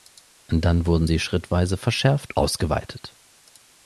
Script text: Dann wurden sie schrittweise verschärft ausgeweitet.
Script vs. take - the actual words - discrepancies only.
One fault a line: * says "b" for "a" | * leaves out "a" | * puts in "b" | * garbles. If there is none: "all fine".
all fine